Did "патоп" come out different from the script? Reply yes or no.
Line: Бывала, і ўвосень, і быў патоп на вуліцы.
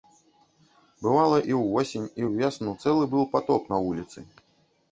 no